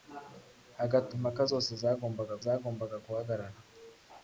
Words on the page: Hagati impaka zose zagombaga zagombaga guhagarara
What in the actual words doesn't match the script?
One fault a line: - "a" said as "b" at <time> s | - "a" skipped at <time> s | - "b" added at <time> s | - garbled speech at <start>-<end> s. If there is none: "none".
none